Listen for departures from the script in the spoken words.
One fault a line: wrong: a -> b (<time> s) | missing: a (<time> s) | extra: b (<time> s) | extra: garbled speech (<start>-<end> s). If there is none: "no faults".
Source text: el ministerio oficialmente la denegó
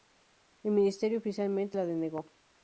no faults